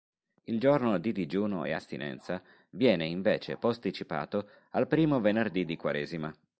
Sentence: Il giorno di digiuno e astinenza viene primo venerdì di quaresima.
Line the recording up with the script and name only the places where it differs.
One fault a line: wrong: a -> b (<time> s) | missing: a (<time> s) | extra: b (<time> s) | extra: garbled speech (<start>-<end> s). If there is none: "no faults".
extra: invece posticipato al (3.0 s)